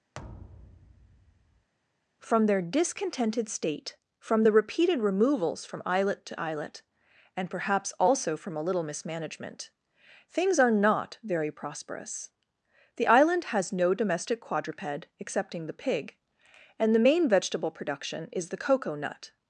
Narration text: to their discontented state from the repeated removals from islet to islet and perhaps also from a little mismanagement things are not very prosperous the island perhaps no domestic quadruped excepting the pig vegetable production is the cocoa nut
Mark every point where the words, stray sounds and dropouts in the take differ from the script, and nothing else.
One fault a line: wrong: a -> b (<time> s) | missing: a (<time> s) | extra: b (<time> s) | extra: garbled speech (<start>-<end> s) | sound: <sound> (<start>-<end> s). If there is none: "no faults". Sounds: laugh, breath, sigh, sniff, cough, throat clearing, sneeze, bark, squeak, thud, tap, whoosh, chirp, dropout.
sound: thud (0.1-1.7 s)
wrong: to -> from (2.2 s)
wrong: perhaps -> has (13.4 s)
extra: and the main (16.8 s)